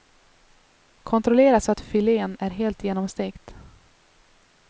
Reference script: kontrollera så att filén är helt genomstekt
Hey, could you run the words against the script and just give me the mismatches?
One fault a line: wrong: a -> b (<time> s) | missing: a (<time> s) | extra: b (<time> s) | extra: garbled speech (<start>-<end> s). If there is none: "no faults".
no faults